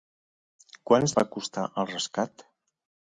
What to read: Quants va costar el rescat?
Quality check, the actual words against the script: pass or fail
pass